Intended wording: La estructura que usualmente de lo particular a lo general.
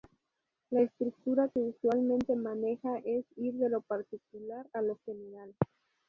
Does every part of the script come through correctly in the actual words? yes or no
no